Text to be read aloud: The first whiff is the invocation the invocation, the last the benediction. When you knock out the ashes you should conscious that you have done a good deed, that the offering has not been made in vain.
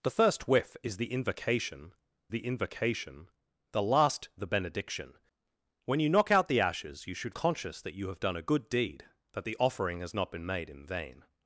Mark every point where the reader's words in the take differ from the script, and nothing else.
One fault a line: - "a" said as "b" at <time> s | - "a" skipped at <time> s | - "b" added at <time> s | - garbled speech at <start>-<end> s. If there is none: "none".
none